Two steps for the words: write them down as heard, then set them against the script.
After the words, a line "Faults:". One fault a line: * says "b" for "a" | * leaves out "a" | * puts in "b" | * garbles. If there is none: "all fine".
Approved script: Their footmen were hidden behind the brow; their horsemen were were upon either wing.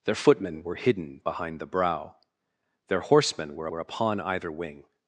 Their footmen were hidden behind the brow; their horsemen were were upon either wing.
Faults:
all fine